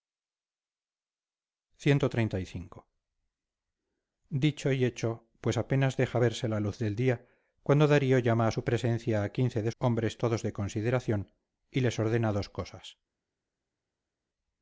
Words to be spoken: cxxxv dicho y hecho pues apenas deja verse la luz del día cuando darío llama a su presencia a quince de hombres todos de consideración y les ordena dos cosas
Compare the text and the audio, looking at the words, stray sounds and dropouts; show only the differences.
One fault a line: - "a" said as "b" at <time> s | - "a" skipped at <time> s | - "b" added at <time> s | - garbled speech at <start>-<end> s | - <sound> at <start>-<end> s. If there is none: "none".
none